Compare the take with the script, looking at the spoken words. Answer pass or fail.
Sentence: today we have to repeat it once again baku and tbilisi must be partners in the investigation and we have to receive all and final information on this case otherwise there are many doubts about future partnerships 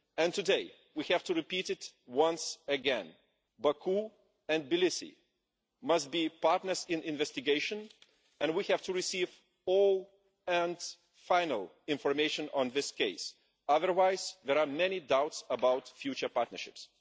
pass